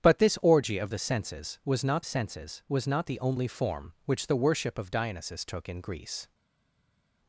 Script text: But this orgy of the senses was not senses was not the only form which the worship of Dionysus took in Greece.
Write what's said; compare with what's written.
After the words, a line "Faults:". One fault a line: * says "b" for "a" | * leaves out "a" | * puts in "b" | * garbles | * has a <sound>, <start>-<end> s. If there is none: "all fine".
But this orgy of the senses was not senses was not the only form which the worship of Dionysus took in Greece.
Faults:
all fine